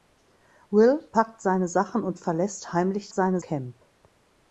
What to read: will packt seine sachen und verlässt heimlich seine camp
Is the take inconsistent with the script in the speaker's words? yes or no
no